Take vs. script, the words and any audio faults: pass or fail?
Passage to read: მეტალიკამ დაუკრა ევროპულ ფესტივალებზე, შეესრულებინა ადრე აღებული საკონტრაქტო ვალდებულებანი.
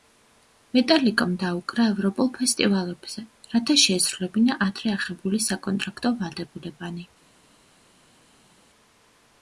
fail